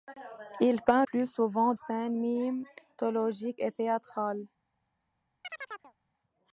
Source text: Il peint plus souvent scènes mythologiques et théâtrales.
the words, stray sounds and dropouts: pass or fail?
fail